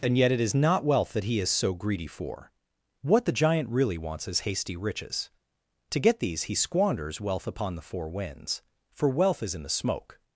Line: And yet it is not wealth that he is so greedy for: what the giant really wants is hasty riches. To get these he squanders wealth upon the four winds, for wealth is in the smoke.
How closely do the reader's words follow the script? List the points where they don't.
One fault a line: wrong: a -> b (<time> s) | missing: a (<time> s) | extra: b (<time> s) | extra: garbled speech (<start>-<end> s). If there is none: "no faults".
no faults